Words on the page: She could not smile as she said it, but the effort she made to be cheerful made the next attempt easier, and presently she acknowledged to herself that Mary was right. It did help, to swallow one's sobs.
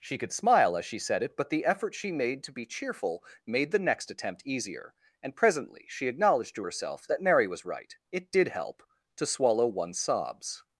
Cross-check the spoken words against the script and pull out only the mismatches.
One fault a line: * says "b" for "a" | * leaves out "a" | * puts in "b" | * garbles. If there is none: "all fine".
* leaves out "not"